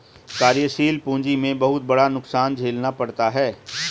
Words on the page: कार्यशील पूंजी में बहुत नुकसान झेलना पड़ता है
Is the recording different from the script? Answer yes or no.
yes